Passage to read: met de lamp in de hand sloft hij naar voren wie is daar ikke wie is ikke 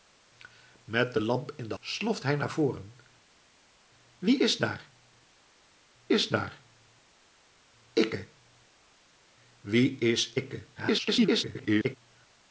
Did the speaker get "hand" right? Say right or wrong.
wrong